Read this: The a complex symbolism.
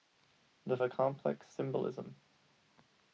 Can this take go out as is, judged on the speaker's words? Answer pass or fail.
pass